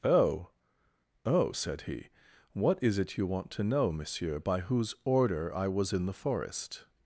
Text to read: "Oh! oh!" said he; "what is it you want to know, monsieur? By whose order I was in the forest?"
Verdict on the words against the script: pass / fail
pass